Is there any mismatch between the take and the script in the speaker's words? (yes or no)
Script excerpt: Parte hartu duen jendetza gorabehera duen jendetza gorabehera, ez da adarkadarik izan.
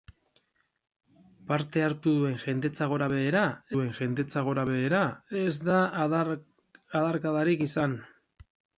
no